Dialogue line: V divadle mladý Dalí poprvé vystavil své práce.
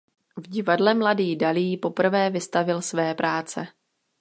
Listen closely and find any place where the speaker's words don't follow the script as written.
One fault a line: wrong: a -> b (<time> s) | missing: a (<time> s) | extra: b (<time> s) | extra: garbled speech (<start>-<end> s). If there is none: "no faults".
no faults